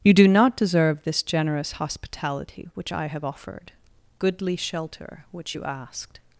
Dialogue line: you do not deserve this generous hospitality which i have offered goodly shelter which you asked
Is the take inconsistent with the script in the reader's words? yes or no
no